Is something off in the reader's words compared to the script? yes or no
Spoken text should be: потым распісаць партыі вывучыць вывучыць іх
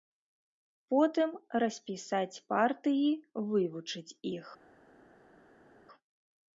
yes